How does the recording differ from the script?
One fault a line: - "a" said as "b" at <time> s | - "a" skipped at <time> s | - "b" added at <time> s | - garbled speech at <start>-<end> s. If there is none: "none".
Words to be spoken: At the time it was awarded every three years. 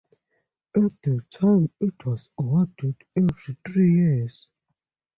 none